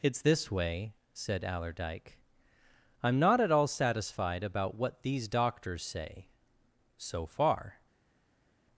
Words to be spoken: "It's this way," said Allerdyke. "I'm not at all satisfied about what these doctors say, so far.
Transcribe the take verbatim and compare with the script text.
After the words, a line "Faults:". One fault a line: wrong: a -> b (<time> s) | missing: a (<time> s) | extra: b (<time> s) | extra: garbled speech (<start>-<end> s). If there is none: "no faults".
"It's this way," said Allerdyke. "I'm not at all satisfied about what these doctors say, so far.
Faults:
no faults